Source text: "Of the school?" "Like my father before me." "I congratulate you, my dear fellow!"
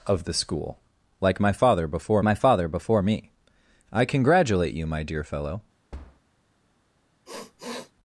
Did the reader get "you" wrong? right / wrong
right